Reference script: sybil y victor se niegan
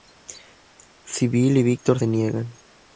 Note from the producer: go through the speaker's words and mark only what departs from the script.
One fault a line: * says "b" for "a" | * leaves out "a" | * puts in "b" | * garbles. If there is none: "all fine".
all fine